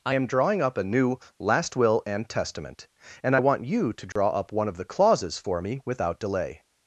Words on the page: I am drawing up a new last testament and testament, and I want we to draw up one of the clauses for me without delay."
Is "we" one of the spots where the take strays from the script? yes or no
yes